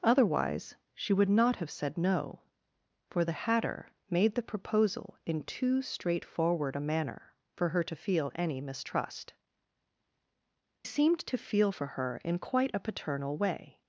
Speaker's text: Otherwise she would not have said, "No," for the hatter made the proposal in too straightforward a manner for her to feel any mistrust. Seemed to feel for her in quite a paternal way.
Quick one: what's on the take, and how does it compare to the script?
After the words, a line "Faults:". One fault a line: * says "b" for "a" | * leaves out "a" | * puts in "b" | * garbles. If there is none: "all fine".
Otherwise she would not have said, "No," for the hatter made the proposal in too straightforward a manner for her to feel any mistrust. Seemed to feel for her in quite a paternal way.
Faults:
all fine